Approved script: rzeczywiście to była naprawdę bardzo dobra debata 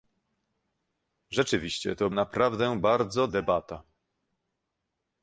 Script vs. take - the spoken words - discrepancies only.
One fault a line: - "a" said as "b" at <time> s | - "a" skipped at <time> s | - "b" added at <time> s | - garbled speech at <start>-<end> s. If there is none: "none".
- "była" skipped at 2.1 s
- "dobra" skipped at 3.3 s